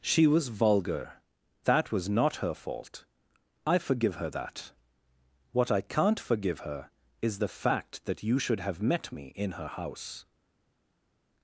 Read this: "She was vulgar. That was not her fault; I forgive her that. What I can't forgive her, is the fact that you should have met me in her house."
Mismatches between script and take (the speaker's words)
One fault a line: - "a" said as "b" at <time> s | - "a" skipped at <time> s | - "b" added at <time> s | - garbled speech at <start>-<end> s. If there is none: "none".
none